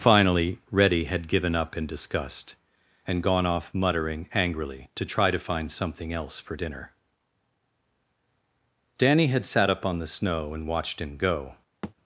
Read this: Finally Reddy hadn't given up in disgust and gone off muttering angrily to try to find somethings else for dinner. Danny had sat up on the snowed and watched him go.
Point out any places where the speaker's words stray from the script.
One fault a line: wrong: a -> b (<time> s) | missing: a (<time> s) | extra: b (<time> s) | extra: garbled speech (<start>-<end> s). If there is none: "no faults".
wrong: hadn't -> had (1.0 s)
wrong: somethings -> something (5.7 s)
wrong: snowed -> snow (10.1 s)